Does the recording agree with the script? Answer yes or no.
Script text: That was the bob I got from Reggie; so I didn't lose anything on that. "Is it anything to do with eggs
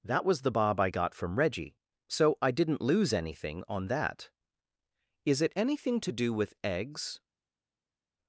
yes